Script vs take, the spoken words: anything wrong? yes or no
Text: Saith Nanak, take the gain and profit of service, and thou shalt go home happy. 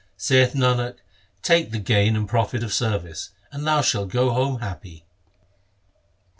no